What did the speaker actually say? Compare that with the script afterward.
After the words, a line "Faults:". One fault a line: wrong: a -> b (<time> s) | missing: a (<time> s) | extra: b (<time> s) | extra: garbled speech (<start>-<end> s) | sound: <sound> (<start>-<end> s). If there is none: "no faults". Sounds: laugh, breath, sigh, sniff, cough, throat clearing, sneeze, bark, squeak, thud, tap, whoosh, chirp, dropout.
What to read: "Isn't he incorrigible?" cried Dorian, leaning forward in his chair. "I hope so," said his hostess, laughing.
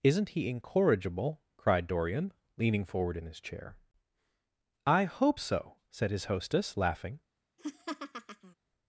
"Isn't he incorrigible?" cried Dorian, leaning forward in his chair. "I hope so," said his hostess, laughing.
Faults:
sound: laugh (7.6-8.5 s)